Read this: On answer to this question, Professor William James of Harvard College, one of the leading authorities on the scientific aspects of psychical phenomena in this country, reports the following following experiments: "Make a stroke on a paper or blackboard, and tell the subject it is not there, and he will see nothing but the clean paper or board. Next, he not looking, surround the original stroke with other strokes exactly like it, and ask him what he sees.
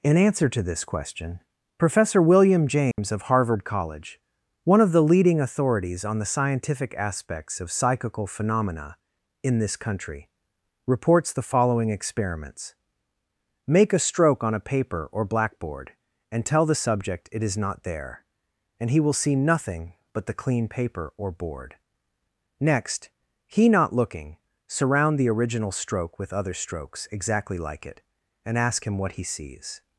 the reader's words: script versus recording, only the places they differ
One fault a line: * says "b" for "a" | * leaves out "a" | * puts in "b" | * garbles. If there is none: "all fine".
* says "In" for "On"
* leaves out "following"